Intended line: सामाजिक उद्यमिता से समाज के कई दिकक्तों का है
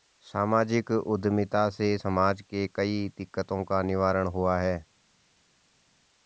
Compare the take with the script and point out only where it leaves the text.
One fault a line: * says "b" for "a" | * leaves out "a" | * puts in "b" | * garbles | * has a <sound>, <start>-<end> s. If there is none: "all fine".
* puts in "निवारण हुआ"